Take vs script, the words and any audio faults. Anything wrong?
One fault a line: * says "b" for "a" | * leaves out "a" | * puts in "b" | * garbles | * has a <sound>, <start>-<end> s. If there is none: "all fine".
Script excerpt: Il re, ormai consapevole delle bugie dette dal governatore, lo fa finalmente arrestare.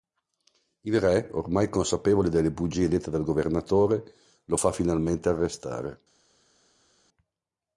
all fine